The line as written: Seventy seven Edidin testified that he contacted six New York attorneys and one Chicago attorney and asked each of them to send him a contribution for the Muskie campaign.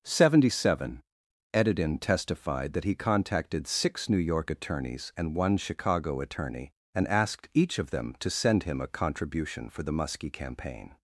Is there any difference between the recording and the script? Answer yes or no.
no